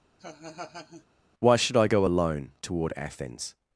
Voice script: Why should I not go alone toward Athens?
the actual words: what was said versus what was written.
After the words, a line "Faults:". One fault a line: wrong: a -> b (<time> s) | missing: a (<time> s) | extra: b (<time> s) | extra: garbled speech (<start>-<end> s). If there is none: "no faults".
Why should I go alone toward Athens?
Faults:
missing: not (1.9 s)